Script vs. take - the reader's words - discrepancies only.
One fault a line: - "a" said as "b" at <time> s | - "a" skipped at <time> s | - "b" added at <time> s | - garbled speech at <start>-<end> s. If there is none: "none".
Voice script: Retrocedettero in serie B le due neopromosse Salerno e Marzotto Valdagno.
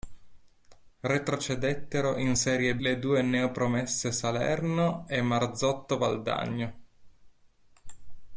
- "B" skipped at 2.8 s